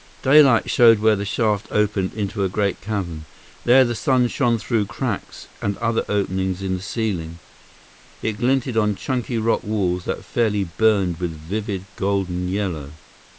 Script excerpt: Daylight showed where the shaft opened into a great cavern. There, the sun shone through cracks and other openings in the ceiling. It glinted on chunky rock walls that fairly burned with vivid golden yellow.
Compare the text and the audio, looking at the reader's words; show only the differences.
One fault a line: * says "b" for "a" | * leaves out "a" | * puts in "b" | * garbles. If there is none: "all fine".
all fine